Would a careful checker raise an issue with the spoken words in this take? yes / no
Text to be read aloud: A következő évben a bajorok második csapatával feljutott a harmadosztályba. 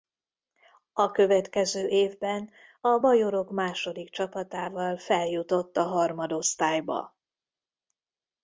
no